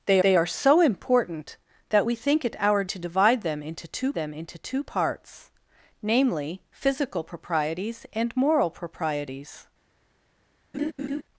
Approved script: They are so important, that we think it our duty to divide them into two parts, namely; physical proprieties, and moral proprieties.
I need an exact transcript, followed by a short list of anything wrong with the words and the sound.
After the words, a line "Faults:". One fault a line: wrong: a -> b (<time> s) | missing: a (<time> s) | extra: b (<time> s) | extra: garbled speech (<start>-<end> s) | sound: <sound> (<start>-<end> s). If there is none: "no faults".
They they are so important, that we think it our to divide them into two them into two parts, namely; physical proprieties, and moral proprieties.
Faults:
extra: they (0.2 s)
missing: duty (2.8 s)
extra: them into two (4.1 s)
sound: laugh (10.7-11.2 s)